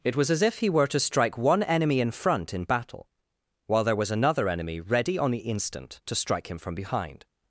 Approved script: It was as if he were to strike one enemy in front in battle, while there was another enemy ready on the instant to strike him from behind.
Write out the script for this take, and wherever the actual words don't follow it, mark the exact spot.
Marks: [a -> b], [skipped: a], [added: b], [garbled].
It was as if he were to strike one enemy in front in battle, while there was another enemy ready on the instant to strike him from behind.